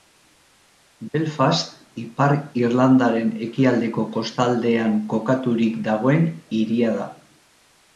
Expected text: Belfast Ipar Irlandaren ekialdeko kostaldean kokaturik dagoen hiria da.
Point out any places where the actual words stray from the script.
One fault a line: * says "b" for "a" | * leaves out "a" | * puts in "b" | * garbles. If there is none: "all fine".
all fine